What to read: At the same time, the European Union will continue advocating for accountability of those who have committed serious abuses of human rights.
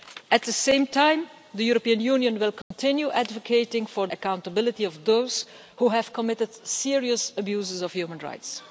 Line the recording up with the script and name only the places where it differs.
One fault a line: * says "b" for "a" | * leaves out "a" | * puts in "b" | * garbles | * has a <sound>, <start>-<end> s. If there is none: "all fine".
* has a dropout, 2.6-2.7 s